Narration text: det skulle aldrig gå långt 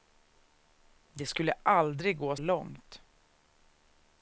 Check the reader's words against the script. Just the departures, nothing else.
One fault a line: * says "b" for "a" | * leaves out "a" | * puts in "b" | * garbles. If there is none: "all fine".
all fine